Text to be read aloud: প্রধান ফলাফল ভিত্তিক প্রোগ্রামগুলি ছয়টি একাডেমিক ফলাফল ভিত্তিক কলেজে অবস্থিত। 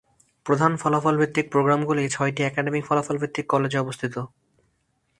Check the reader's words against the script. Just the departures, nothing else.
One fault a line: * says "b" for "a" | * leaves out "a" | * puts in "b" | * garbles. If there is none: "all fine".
all fine